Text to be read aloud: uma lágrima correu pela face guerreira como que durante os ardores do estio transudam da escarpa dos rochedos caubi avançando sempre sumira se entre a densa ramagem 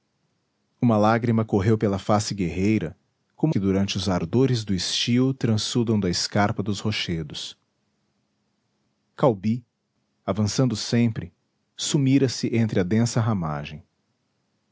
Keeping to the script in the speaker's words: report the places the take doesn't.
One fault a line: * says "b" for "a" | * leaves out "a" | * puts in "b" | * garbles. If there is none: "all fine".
all fine